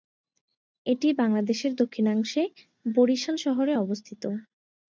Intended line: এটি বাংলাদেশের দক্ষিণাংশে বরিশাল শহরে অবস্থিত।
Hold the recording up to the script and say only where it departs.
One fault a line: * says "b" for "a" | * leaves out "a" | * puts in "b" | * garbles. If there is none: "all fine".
all fine